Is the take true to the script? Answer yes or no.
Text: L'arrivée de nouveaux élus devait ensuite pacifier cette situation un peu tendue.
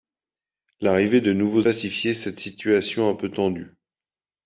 no